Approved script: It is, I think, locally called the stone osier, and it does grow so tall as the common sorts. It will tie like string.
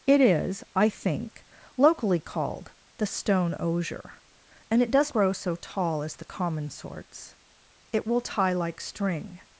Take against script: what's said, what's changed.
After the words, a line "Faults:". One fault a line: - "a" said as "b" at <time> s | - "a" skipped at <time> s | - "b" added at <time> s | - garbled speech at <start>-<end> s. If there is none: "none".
It is, I think, locally called the stone osier, and it does grow so tall as the common sorts. It will tie like string.
Faults:
none